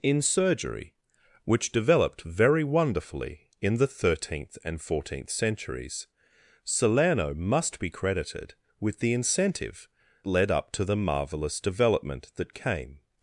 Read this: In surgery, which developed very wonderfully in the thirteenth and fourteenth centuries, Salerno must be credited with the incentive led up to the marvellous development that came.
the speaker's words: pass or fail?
pass